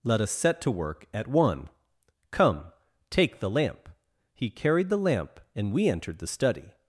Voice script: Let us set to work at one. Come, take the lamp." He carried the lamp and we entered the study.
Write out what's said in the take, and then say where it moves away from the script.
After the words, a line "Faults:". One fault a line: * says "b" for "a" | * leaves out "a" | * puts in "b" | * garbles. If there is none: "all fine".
Let us set to work at one. Come, take the lamp." He carried the lamp and we entered the study.
Faults:
all fine